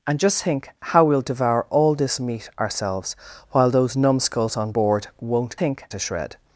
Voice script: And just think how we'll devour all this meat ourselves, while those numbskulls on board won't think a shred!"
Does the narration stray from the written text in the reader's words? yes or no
no